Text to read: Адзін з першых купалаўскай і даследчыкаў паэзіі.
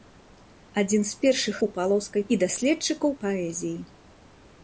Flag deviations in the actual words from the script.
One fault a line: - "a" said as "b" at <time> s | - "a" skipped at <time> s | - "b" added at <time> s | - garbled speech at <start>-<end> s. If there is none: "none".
none